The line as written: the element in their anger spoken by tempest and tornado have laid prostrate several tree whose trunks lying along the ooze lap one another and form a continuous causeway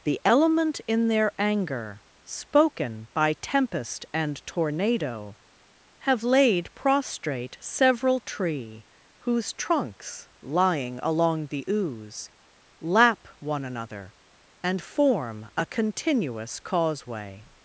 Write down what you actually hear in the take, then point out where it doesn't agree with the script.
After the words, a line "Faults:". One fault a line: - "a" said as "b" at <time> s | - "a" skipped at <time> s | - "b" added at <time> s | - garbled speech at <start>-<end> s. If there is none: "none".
the element in their anger spoken by tempest and tornado have laid prostrate several tree whose trunks lying along the ooze lap one another and form a continuous causeway
Faults:
none